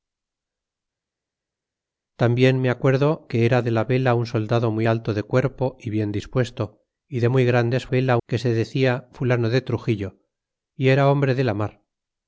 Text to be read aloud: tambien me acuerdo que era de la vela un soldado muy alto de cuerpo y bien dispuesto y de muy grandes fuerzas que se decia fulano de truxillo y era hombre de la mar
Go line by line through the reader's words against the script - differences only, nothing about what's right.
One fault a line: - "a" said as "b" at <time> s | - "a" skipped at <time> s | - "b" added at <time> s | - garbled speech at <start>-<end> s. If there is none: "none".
- "fuerzas" said as "vela" at 7.9 s